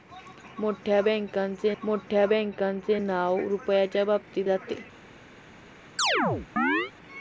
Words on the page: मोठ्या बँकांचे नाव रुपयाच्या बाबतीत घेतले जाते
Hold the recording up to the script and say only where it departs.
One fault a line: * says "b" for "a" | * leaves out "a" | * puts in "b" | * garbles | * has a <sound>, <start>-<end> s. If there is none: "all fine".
* puts in "मोठ्या बँकांचे"
* leaves out "घेतले"
* has a chirp, 6.0-6.9 s